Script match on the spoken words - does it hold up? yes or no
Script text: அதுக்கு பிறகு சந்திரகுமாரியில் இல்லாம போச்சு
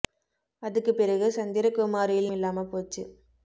yes